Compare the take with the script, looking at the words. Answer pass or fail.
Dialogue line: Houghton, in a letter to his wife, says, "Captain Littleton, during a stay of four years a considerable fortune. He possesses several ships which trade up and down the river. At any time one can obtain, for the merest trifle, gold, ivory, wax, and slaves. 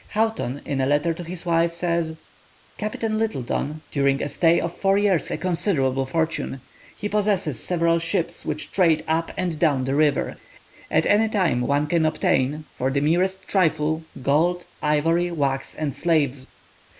pass